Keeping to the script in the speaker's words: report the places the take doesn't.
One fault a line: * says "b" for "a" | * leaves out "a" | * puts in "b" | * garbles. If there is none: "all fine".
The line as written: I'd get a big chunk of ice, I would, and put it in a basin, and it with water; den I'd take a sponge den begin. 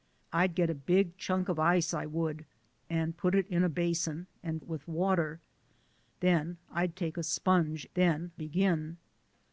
all fine